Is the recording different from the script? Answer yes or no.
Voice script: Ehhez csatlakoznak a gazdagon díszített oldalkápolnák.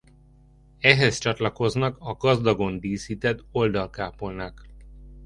no